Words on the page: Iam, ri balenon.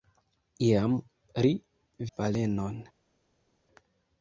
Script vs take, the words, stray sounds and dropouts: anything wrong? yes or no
no